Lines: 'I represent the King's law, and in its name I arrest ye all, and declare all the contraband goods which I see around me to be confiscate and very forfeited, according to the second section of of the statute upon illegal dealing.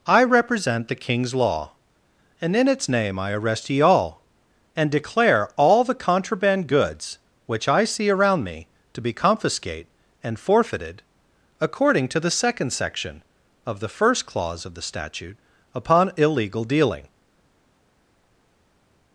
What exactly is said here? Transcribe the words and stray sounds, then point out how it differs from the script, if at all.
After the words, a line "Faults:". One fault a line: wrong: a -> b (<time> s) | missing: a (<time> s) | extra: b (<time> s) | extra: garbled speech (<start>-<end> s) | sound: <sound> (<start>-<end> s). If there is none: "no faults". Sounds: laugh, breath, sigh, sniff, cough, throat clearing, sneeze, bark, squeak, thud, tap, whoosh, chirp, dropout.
'I represent the King's law, and in its name I arrest ye all, and declare all the contraband goods which I see around me to be confiscate and forfeited, according to the second section of the first clause of the statute upon illegal dealing.
Faults:
missing: very (10.4 s)
extra: the first clause (13.8 s)